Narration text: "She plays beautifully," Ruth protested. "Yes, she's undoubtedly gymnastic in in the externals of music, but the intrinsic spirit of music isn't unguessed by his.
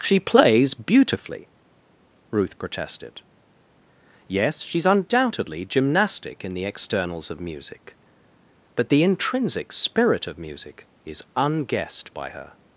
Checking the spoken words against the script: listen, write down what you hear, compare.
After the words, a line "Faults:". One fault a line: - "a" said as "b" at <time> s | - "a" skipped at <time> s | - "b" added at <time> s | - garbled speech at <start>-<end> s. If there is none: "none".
"She plays beautifully," Ruth protested. "Yes, she's undoubtedly gymnastic in the externals of music, but the intrinsic spirit of music is unguessed by her.
Faults:
- "in" skipped at 6.5 s
- "isn't" said as "is" at 11.0 s
- "his" said as "her" at 12.3 s